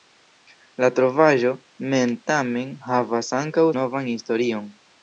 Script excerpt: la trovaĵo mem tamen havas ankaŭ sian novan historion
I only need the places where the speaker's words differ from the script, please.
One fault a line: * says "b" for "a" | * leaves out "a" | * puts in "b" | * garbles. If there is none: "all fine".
* leaves out "sian"